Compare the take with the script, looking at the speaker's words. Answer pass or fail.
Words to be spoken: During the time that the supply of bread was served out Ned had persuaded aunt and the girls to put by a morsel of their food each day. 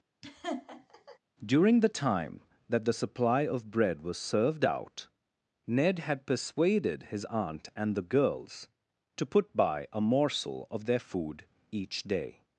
fail